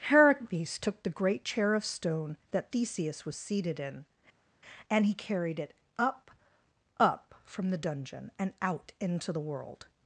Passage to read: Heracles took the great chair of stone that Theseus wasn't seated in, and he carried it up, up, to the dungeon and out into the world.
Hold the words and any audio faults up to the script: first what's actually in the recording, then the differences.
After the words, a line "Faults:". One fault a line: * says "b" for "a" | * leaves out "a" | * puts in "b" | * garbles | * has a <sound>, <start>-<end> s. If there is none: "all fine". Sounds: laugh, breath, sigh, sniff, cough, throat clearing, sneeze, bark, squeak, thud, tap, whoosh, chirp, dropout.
Heracles took the great chair of stone that Theseus was seated in, and he carried it up, up, from the dungeon and out into the world.
Faults:
* says "was" for "wasn't"
* says "from" for "to"